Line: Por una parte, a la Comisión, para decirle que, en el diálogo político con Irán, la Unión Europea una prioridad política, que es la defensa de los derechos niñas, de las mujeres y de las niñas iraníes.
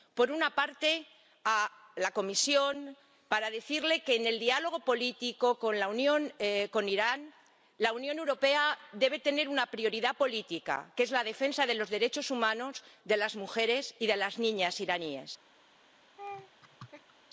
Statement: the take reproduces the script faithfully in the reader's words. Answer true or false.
false